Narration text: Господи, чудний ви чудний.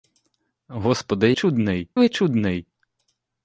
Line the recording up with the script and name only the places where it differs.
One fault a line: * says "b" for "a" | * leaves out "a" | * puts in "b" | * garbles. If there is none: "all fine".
all fine